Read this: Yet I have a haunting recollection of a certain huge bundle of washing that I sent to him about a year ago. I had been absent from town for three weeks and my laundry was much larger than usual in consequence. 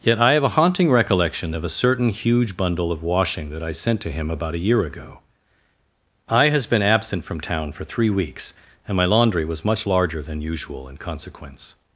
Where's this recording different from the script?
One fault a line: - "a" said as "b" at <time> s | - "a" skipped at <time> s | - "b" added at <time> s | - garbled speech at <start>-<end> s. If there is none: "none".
- "had" said as "has" at 6.5 s